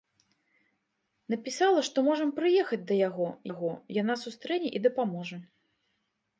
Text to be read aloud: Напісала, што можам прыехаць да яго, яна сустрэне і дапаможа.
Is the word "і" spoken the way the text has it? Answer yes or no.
yes